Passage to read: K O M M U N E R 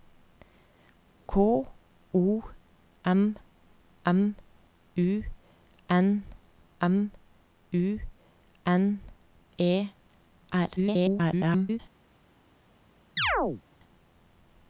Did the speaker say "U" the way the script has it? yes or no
yes